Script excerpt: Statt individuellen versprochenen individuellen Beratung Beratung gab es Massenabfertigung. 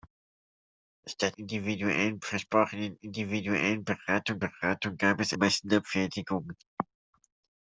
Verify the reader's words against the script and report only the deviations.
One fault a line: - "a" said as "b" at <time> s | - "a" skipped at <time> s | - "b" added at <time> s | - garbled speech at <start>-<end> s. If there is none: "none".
none